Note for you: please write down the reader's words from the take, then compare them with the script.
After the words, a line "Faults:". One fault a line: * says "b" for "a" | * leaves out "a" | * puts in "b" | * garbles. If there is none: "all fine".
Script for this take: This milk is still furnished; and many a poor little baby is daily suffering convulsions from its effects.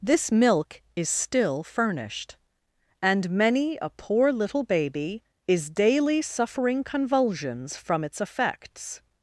This milk is still furnished; and many a poor little baby is daily suffering convulsions from its effects.
Faults:
all fine